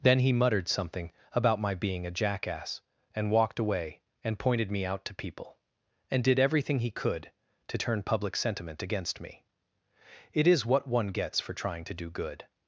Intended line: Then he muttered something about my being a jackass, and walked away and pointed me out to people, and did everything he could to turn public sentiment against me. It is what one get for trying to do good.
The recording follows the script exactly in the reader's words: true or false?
false